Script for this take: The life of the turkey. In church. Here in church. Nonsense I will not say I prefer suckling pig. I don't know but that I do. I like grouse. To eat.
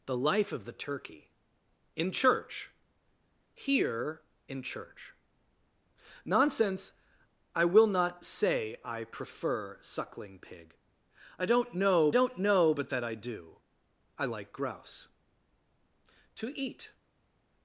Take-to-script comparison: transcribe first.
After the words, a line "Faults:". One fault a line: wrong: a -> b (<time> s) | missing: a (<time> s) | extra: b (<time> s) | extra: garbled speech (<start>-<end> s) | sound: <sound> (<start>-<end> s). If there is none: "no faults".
The life of the turkey. In church. Here in church. Nonsense I will not say I prefer suckling pig. I don't know don't know but that I do. I like grouse. To eat.
Faults:
extra: don't know (12.1 s)